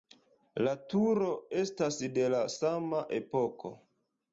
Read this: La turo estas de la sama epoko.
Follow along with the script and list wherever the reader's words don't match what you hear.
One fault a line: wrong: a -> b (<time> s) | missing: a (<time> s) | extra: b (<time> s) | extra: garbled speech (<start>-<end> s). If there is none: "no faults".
no faults